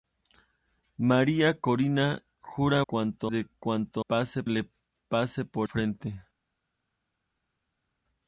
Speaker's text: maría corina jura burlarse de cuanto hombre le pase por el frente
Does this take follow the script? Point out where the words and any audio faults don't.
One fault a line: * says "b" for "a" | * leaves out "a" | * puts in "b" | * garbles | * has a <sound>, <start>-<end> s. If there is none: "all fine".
* says "cuanto" for "burlarse"
* says "pase" for "hombre"
* leaves out "el"